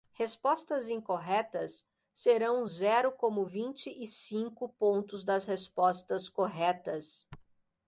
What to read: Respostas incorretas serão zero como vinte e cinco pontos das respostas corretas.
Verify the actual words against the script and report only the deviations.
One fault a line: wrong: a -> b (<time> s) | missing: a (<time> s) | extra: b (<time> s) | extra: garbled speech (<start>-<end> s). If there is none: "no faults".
no faults